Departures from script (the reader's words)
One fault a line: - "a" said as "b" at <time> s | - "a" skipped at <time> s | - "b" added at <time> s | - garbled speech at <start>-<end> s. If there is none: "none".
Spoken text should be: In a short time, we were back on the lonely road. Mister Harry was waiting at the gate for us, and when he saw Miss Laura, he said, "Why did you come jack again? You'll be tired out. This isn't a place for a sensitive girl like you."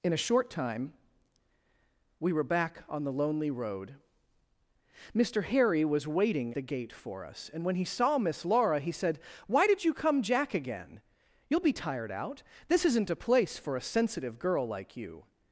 - "at" skipped at 6.5 s